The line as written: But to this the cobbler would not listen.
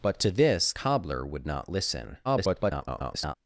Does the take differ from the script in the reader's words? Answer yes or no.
yes